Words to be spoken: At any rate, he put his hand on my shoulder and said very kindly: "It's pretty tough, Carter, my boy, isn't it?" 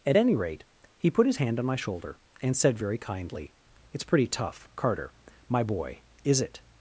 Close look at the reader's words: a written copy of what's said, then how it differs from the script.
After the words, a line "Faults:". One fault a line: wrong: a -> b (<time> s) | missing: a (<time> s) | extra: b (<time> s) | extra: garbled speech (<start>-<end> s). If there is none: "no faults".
At any rate, he put his hand on my shoulder and said very kindly: "It's pretty tough, Carter, my boy, is it?"
Faults:
wrong: isn't -> is (6.2 s)